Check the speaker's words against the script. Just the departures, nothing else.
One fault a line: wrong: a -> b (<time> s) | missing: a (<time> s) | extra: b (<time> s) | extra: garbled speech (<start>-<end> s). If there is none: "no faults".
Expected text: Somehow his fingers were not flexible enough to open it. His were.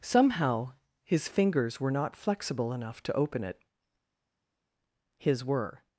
no faults